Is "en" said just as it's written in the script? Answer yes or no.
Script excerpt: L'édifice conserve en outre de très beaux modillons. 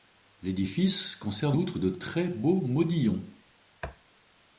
no